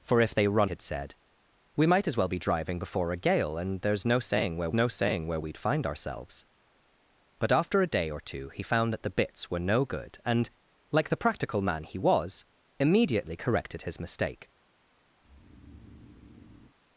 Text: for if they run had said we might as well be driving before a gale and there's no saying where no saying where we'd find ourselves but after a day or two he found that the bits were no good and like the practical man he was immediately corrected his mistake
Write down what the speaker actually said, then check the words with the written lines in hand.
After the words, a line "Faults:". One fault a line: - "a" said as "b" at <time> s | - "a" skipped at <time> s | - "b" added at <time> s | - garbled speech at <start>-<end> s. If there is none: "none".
for if they run had said we might as well be driving before a gale and there's no saying where no saying where we'd find ourselves but after a day or two he found that the bits were no good and like the practical man he was immediately corrected his mistake
Faults:
none